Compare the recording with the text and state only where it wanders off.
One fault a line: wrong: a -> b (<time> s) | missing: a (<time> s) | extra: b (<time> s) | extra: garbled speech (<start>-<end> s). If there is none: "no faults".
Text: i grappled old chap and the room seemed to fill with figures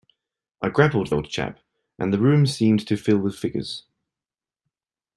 no faults